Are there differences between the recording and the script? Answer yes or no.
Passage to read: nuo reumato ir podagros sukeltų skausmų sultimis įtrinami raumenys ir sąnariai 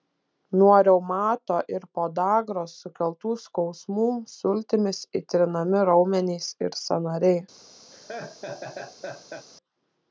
no